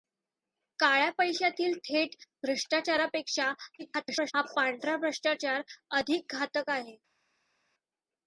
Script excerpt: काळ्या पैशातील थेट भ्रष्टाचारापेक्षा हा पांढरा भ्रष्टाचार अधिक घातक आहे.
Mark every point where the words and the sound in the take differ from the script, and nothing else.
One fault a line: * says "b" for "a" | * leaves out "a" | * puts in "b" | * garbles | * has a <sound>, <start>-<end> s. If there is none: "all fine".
* garbles